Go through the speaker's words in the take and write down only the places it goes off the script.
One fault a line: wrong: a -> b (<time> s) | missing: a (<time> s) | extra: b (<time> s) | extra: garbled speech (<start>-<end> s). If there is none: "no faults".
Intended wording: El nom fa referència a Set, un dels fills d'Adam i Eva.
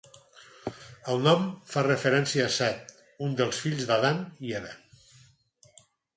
no faults